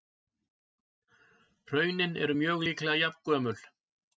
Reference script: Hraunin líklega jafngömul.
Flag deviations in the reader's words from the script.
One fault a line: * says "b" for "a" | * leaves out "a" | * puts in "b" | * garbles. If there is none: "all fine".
* puts in "eru mjög"